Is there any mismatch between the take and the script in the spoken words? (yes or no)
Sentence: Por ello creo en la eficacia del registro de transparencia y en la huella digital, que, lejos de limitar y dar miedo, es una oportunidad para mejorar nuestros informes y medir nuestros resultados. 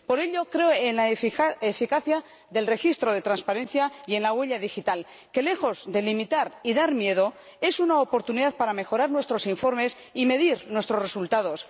no